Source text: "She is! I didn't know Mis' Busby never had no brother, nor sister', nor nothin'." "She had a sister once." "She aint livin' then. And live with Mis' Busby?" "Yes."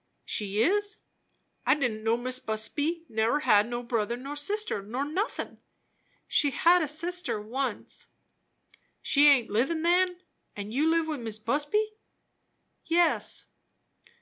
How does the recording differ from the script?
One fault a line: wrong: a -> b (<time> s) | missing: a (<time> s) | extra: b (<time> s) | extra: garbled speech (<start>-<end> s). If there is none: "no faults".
extra: you (10.7 s)